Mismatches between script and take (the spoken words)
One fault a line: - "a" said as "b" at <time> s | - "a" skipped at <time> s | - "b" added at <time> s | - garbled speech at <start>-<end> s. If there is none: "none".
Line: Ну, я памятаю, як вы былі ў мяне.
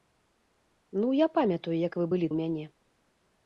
none